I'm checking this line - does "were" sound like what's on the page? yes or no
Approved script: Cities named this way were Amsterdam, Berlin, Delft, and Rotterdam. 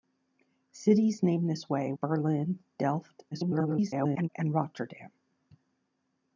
no